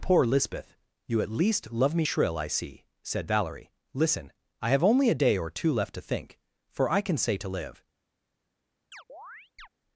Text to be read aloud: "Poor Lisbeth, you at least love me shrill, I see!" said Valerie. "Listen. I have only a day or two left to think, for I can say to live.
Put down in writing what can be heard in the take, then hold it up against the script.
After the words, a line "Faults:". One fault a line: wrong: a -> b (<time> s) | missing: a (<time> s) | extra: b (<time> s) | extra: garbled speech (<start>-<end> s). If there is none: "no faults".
"Poor Lisbeth, you at least love me shrill, I see!" said Valerie. "Listen. I have only a day or two left to think, for I can say to live.
Faults:
no faults